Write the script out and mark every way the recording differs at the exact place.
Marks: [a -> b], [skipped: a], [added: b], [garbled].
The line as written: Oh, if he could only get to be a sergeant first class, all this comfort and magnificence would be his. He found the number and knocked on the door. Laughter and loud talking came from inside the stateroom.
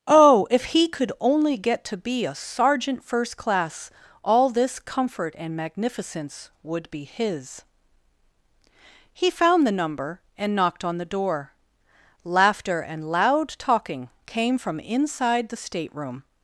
Oh, if he could only get to be a sergeant first class, all this comfort and magnificence would be his. He found the number and knocked on the door. Laughter and loud talking came from inside the stateroom.